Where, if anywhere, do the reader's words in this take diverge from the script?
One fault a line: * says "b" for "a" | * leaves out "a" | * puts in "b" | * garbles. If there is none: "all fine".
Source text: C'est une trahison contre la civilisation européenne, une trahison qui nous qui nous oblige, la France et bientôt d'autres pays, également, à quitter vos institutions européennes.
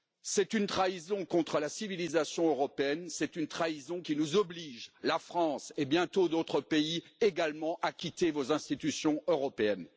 * puts in "c'est"
* leaves out "qui nous"